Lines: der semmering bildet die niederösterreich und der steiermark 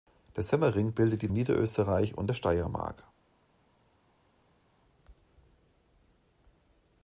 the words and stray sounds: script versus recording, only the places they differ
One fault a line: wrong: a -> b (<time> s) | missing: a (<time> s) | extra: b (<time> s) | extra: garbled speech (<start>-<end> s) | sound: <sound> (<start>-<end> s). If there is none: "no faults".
no faults